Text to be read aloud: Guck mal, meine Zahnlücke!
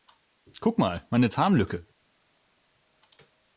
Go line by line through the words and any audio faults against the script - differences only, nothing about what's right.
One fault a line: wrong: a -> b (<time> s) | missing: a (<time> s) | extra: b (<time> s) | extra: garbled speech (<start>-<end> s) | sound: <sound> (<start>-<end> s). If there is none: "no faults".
no faults